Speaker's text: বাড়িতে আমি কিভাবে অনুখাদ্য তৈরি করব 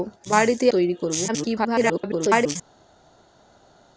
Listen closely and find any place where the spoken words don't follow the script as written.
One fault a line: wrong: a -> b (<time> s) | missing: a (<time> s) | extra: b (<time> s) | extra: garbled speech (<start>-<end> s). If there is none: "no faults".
missing: আমি কিভাবে অনুখাদ্য (0.7 s)
extra: garbled speech (1.3-2.6 s)